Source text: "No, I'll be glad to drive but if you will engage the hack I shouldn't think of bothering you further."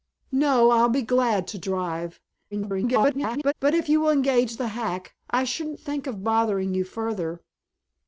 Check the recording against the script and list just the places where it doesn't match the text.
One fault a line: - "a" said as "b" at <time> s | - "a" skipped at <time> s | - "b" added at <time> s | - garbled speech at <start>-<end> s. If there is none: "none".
- garbled speech at 2.5-3.5 s